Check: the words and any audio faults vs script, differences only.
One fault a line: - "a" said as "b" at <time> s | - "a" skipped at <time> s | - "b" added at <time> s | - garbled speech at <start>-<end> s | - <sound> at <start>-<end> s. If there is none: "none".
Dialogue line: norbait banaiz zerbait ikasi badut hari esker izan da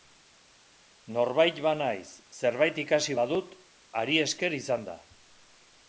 none